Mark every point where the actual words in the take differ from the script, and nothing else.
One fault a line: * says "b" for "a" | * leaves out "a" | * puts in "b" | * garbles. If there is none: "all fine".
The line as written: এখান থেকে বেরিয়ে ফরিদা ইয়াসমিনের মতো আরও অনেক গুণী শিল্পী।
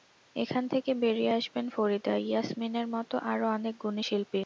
* puts in "আসবেন"